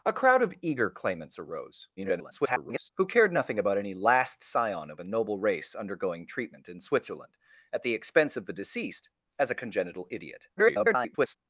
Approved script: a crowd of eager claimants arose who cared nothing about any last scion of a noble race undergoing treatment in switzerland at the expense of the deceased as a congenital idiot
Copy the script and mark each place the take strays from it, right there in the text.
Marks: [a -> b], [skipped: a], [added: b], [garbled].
a crowd of eager claimants arose [garbled] who cared nothing about any last scion of a noble race undergoing treatment in switzerland at the expense of the deceased as a congenital idiot [garbled]